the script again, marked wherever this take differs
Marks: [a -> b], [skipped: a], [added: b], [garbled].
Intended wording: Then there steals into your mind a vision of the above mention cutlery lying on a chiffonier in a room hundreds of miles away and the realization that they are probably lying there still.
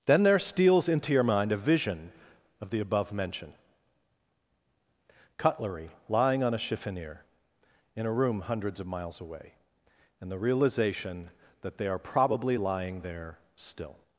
Then there steals into your mind a vision of the above mention cutlery lying on a chiffonier in a room hundreds of miles away and the realization that they are probably lying there still.